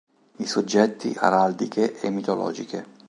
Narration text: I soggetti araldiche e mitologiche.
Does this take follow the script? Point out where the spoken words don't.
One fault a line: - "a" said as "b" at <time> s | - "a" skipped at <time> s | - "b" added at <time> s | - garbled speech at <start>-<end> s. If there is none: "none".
none